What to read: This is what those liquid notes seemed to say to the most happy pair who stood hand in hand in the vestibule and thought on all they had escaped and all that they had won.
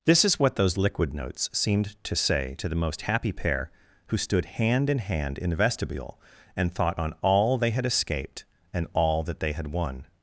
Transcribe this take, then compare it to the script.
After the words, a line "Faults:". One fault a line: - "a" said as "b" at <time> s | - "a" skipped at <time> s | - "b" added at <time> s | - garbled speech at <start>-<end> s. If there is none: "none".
This is what those liquid notes seemed to say to the most happy pair who stood hand in hand in the vestibule and thought on all they had escaped and all that they had won.
Faults:
none